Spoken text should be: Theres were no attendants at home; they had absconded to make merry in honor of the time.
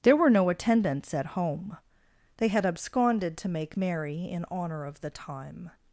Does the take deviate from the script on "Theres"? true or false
true